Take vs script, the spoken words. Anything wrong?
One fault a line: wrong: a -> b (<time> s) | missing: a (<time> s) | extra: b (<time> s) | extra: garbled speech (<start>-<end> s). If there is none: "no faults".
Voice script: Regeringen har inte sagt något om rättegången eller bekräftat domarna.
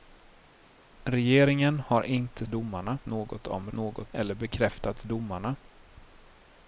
wrong: sagt -> domarna (2.5 s)
wrong: rättegången -> något (3.7 s)